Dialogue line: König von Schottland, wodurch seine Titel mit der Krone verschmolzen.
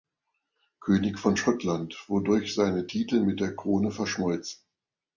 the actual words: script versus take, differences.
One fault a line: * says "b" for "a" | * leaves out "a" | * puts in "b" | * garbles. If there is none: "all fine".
all fine